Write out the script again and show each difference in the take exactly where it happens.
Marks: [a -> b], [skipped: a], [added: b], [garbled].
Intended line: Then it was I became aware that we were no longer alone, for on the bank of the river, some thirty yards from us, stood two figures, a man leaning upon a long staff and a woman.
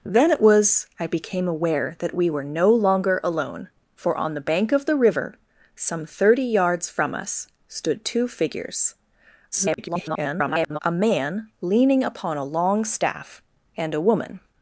Then it was I became aware that we were no longer alone, for on the bank of the river, some thirty yards from us, stood two figures, [garbled] a man leaning upon a long staff and a woman.